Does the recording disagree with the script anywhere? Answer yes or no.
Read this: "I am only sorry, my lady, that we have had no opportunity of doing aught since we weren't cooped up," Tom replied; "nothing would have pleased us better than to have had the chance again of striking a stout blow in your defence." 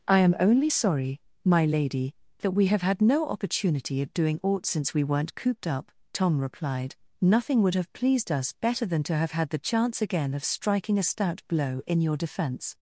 no